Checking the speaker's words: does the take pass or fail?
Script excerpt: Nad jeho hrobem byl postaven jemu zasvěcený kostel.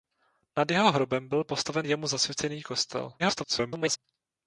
fail